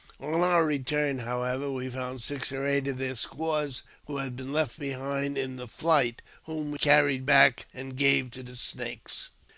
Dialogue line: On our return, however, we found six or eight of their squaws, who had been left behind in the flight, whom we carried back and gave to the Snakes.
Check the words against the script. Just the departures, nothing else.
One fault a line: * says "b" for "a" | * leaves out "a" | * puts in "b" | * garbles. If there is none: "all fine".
all fine